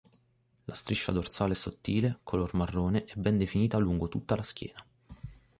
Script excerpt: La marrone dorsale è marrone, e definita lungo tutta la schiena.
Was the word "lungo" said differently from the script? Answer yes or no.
no